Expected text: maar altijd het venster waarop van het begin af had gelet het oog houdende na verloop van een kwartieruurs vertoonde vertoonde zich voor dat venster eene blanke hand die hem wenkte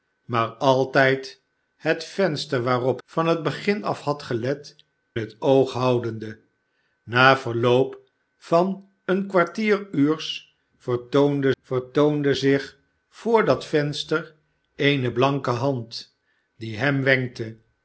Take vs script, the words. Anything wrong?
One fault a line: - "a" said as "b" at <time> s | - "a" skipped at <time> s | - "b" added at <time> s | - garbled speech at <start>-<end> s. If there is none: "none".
none